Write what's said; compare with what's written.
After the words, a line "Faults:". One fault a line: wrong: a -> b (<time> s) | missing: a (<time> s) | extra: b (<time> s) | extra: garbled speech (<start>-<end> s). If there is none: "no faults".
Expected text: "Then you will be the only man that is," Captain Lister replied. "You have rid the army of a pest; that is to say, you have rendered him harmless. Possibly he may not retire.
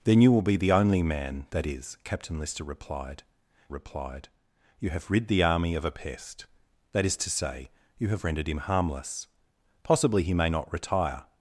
"Then you will be the only man that is," Captain Lister replied replied. "You have rid the army of a pest; that is to say, you have rendered him harmless. Possibly he may not retire.
Faults:
extra: replied (3.7 s)